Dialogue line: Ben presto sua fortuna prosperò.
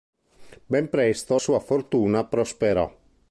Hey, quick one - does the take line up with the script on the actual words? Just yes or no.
yes